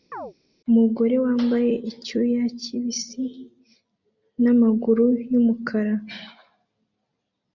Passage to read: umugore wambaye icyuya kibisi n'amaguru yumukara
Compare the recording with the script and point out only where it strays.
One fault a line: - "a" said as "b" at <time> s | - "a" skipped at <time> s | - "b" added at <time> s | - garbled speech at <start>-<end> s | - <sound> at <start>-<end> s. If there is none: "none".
- chirp at 0.1-0.3 s